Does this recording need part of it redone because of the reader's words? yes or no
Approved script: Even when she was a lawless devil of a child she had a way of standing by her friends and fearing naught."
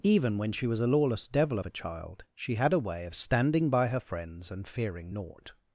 no